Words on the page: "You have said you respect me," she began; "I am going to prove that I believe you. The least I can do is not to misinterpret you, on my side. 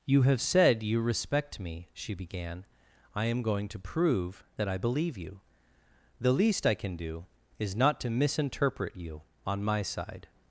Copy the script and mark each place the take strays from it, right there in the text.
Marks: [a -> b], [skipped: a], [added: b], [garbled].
"You have said you respect me," she began; "I am going to prove that I believe you. The least I can do is not to misinterpret you, on my side.